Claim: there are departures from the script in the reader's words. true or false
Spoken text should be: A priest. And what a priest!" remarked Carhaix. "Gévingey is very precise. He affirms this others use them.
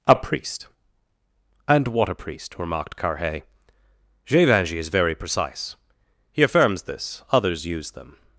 false